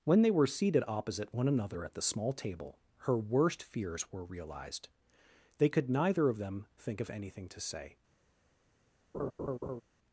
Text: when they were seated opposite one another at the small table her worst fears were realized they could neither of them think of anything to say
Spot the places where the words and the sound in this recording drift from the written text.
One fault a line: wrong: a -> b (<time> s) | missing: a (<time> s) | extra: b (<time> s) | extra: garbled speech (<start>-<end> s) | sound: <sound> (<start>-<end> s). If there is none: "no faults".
sound: laugh (9.1-9.8 s)